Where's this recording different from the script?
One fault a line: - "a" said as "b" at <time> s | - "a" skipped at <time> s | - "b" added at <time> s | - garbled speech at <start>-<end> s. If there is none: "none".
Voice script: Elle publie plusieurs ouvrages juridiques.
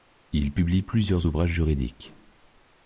- "Elle" said as "Il" at 0.3 s